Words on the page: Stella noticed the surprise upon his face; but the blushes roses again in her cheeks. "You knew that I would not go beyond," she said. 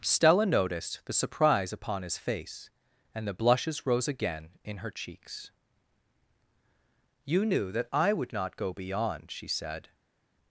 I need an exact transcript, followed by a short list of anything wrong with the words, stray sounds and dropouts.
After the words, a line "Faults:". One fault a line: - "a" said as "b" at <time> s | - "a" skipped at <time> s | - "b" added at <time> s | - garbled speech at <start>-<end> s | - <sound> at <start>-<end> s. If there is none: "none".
Stella noticed the surprise upon his face; and the blushes rose again in her cheeks. "You knew that I would not go beyond," she said.
Faults:
- "but" said as "and" at 3.1 s
- "roses" said as "rose" at 3.9 s